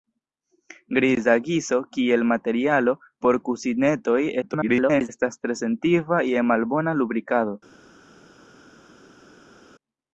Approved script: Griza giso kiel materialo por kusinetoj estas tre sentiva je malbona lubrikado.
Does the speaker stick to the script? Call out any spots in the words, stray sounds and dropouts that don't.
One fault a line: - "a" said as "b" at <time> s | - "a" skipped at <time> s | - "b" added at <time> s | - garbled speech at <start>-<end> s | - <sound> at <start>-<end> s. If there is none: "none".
- garbled speech at 4.4-5.1 s